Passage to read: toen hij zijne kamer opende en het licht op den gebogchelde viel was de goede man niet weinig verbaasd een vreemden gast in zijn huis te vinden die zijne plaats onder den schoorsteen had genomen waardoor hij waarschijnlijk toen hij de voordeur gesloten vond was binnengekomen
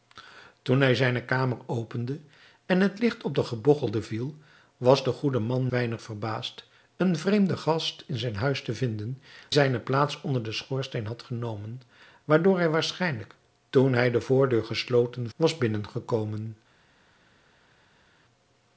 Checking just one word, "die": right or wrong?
wrong